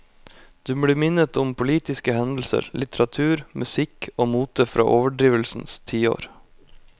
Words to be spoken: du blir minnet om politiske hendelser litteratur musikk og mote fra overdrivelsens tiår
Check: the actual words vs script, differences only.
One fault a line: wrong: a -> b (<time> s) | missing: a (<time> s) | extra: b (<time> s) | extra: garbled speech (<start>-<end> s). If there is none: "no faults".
no faults